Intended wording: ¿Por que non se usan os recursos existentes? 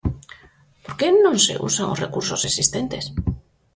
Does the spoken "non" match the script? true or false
true